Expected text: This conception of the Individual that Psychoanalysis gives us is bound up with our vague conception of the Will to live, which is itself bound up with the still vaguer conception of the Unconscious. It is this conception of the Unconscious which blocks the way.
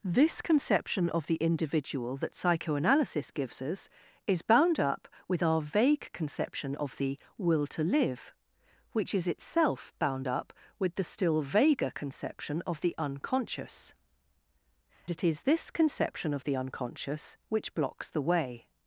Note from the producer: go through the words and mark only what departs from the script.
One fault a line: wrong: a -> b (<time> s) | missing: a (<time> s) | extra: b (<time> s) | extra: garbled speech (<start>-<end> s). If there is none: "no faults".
no faults